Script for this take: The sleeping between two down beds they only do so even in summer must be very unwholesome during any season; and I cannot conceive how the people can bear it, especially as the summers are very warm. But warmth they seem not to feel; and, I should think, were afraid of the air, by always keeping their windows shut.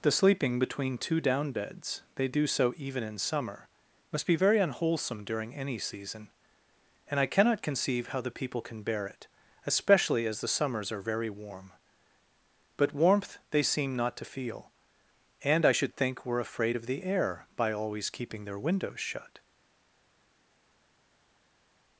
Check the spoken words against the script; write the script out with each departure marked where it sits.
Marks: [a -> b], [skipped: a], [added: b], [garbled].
The sleeping between two down beds they [skipped: only] do so even in summer must be very unwholesome during any season; and I cannot conceive how the people can bear it, especially as the summers are very warm. But warmth they seem not to feel; and, I should think, were afraid of the air, by always keeping their windows shut.